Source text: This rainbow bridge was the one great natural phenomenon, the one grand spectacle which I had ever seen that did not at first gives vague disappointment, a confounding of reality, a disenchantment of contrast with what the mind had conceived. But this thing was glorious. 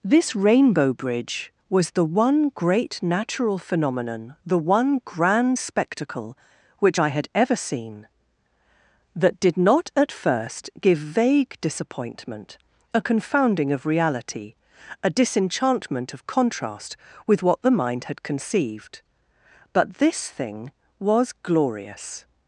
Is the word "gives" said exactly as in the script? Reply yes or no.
no